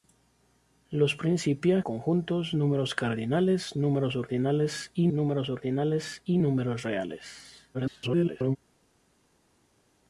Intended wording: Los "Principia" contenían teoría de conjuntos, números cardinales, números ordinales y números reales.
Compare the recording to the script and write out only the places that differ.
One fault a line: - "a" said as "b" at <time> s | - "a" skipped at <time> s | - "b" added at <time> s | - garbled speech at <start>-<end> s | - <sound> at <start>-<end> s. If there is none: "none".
- "contenían teoría de conjuntos números cardinales" said as "conjuntos números cardinales números ordinales y" at 1.8 s
- garbled speech at 7.7-8.6 s